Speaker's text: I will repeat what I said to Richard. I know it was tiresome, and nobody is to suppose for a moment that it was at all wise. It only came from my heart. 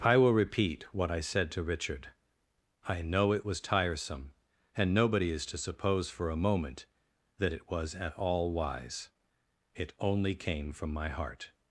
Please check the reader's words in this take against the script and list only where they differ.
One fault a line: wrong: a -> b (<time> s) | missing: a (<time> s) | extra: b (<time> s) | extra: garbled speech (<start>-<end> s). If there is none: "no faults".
no faults